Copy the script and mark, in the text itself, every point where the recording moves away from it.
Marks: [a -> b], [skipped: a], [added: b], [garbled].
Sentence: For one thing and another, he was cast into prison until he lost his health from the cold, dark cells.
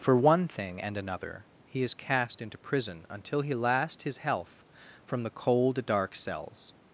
For one thing and another, he [was -> is] cast into prison until he [lost -> last] his health from the cold, dark cells.